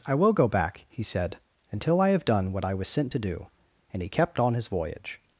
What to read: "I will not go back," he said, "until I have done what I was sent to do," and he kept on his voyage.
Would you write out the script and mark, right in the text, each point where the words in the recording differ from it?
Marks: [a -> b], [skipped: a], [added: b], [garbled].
"I will [skipped: not] go back," he said, "until I have done what I was sent to do," and he kept on his voyage.